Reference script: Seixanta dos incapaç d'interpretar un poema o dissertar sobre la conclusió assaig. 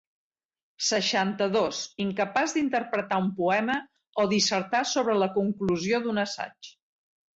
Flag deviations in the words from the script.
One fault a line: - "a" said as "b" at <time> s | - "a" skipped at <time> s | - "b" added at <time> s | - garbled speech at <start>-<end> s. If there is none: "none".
- "d'un" added at 6.1 s